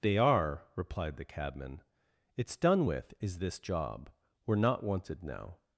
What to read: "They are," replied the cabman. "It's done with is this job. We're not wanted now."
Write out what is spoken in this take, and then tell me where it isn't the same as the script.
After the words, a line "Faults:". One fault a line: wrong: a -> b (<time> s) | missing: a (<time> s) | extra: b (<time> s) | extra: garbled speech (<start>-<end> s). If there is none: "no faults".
"They are," replied the cabman. "It's done with is this job. We're not wanted now."
Faults:
no faults